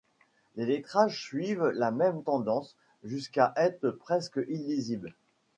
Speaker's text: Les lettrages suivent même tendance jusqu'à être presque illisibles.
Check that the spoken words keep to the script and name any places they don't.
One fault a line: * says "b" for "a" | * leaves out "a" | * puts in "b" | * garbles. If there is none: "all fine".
* puts in "la"